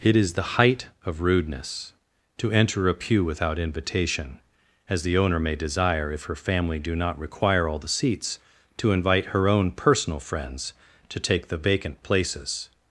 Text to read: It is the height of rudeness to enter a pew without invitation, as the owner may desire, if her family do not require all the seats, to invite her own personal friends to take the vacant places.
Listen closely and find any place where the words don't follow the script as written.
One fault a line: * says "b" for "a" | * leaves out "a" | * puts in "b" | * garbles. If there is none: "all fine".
all fine